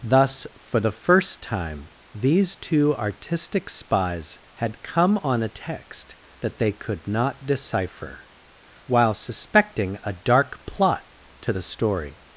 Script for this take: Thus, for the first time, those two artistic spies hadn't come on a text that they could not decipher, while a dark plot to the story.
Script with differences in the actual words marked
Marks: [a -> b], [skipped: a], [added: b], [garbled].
Thus, for the first time, [those -> these] two artistic spies [hadn't -> had] come on a text that they could not decipher, while [added: suspecting] a dark plot to the story.